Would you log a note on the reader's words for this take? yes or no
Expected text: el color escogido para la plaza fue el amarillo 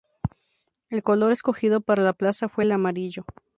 no